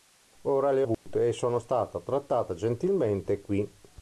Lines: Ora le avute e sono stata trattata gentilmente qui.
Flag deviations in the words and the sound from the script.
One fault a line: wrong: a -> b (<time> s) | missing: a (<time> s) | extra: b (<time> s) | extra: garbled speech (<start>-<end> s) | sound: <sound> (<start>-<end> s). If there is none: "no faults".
sound: dropout (0.9-1.1 s)